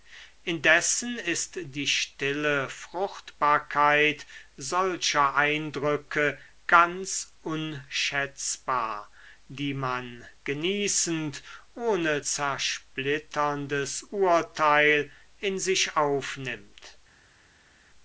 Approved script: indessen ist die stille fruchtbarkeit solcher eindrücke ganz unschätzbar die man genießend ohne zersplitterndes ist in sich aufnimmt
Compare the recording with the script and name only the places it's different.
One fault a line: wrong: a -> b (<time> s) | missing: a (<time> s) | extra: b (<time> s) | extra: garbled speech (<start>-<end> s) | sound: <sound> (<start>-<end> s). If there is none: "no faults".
wrong: ist -> urteil (14.1 s)